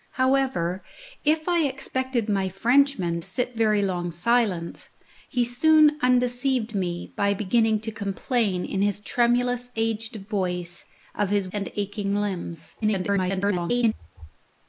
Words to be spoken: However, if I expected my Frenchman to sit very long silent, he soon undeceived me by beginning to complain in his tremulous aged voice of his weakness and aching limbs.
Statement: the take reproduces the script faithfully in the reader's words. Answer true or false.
false